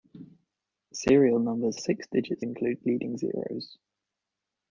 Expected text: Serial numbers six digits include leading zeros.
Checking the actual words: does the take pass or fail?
pass